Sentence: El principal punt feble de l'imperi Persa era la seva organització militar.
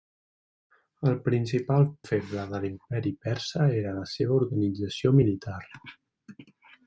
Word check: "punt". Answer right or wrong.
wrong